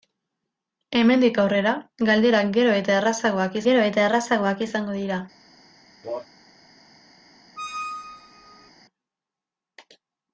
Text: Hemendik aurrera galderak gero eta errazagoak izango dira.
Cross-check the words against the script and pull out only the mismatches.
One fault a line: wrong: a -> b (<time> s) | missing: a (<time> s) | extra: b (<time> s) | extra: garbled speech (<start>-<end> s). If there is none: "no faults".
extra: gero eta errazagoak (3.7 s)